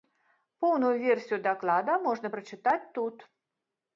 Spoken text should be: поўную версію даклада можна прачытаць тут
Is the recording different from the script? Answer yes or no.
no